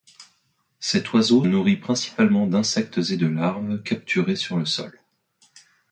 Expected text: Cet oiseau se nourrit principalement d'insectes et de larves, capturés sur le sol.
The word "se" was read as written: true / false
false